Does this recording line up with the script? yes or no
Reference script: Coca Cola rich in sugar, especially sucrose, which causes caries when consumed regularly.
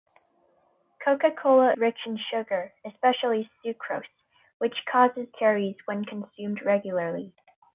yes